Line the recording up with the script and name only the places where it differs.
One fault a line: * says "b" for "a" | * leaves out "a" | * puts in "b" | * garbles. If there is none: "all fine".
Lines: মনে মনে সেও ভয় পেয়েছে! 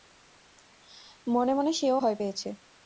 all fine